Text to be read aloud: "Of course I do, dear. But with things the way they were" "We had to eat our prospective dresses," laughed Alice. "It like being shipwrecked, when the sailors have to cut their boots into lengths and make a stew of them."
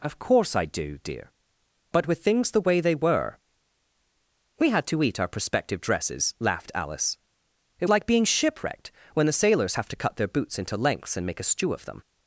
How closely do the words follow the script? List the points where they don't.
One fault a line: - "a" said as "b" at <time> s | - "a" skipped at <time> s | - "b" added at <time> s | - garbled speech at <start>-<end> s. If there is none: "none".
none